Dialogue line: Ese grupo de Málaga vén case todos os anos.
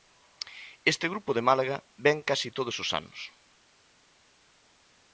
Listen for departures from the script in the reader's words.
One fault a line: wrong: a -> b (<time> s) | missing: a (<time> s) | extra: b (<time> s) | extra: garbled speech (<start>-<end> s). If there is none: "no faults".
wrong: Ese -> Este (0.9 s)